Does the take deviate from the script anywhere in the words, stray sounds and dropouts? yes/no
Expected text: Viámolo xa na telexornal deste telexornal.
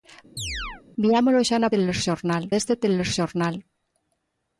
yes